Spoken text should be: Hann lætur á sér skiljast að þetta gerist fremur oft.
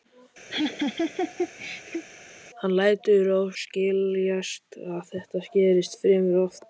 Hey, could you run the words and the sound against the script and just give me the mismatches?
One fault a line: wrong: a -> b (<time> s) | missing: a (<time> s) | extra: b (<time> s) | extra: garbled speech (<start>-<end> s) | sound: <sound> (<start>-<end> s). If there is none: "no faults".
sound: laugh (0.5-2.0 s)
missing: sér (3.4 s)